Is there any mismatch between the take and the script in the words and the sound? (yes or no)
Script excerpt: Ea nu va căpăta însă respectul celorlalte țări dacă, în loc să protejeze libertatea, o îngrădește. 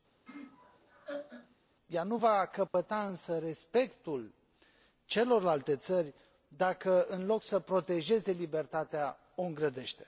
yes